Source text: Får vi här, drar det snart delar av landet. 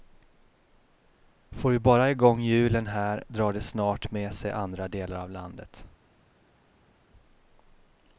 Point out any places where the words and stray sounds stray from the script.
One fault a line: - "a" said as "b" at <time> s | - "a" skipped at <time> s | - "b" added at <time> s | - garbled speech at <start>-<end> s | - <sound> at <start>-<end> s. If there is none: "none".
- "bara igång hjulen" added at 1.8 s
- "med sig andra" added at 4.1 s